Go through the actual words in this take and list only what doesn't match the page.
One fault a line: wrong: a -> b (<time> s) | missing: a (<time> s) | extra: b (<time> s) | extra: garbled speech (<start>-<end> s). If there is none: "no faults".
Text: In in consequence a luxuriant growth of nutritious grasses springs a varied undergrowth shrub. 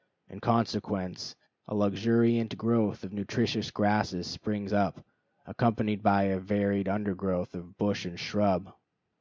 missing: in (0.4 s)
extra: up accompanied by (4.7 s)
extra: of bush and (7.5 s)